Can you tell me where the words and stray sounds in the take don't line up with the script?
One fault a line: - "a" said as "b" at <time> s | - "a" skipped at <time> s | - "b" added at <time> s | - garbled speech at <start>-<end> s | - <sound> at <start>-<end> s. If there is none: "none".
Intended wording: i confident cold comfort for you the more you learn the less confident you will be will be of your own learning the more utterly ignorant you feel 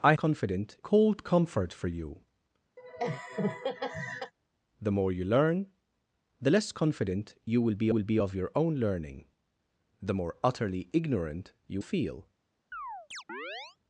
- laugh at 2.8-4.3 s
- chirp at 12.7-13.8 s